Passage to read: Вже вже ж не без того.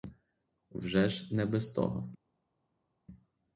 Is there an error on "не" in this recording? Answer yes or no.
no